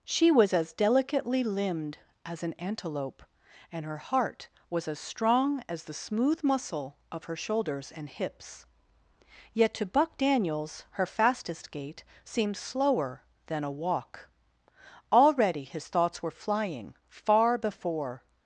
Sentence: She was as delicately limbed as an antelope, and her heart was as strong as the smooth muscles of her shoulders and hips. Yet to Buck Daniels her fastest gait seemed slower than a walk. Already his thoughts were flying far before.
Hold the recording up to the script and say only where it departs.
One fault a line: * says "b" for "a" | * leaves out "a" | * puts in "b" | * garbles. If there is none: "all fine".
* says "muscle" for "muscles"